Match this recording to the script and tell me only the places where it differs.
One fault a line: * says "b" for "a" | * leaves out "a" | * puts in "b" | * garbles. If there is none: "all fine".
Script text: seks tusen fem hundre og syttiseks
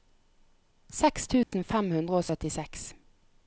all fine